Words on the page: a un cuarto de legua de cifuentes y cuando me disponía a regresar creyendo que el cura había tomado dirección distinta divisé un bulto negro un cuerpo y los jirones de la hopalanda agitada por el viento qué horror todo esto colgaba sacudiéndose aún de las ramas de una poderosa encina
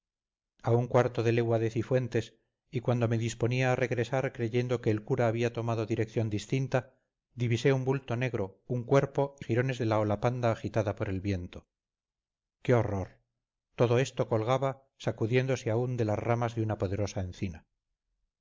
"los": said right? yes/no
no